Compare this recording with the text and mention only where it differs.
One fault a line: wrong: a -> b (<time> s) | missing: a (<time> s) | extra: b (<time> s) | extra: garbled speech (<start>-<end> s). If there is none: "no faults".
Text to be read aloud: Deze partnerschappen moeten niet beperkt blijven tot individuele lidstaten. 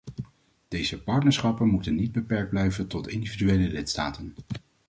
no faults